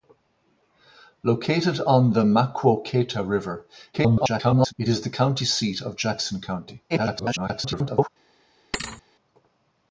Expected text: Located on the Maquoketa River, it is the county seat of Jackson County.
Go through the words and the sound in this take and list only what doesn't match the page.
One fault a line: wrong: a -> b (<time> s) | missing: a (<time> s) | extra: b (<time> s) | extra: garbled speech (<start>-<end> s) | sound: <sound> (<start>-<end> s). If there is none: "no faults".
extra: garbled speech (3.9-4.7 s)
extra: garbled speech (6.9-8.1 s)
sound: thud (8.7-9.0 s)